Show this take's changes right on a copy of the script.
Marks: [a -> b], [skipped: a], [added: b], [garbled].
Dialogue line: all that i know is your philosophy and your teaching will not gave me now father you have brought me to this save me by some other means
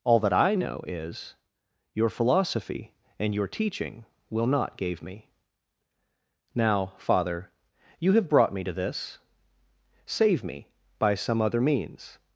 all that i know is your philosophy and your teaching will not gave me now father you have brought me to this save me by some other means